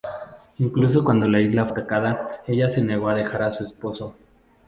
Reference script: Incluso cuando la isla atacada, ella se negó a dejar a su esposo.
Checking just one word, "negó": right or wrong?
right